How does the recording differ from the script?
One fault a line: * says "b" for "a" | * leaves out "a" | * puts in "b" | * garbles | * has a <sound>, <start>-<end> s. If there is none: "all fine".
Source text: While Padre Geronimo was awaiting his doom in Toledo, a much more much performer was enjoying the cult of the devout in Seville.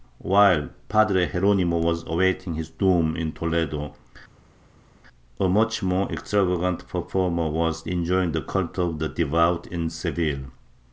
* says "extravagant" for "much"